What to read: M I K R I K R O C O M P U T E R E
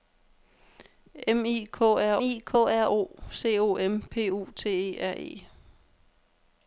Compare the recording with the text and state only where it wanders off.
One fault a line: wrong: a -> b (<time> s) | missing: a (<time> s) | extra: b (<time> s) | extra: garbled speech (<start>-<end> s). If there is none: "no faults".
no faults